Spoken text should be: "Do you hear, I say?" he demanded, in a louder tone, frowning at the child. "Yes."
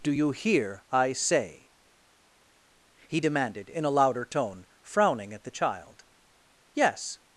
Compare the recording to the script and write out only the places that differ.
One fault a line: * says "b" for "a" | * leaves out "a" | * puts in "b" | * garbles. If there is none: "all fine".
all fine